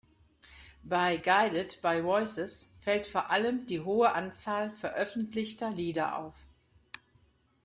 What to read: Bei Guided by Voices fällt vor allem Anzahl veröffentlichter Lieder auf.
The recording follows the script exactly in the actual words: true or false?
false